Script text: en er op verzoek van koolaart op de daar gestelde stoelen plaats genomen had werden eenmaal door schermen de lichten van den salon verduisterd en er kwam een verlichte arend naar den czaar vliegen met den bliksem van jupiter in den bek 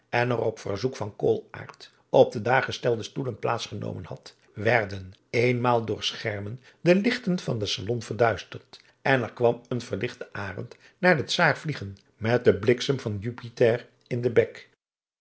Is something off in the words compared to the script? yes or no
no